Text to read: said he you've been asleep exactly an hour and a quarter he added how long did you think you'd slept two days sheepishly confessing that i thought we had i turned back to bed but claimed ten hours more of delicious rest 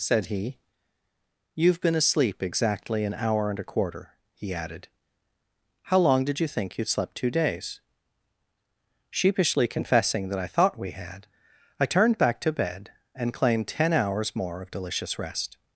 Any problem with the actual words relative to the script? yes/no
yes